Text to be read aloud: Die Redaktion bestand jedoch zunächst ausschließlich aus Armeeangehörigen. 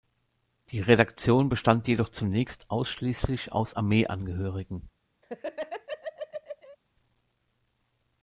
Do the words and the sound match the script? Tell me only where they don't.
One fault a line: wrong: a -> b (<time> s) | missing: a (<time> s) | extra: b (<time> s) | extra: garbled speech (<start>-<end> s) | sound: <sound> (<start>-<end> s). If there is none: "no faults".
sound: laugh (5.2-6.8 s)